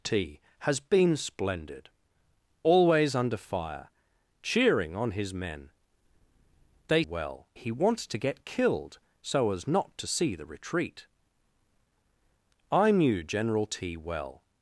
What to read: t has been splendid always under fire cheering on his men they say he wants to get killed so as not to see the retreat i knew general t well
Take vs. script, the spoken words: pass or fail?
fail